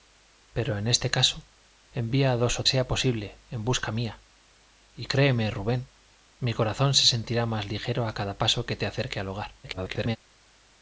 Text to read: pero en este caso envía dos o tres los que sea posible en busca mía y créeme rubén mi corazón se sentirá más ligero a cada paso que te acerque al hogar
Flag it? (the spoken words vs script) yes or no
yes